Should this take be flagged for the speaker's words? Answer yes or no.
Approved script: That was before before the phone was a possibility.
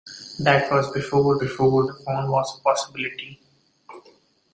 no